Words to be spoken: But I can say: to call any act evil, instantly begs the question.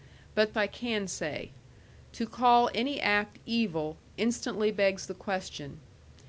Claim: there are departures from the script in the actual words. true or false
false